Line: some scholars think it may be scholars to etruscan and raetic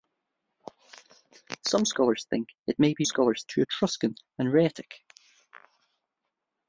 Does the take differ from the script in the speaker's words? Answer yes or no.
no